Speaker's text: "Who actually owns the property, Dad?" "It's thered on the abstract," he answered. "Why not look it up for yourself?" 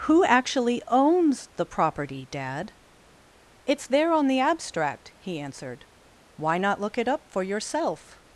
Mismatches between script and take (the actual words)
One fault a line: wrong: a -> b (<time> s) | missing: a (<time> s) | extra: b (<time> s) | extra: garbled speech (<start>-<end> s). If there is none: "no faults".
wrong: thered -> there (3.9 s)